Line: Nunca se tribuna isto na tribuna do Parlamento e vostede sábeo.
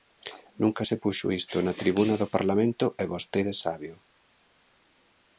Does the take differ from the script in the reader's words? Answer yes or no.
yes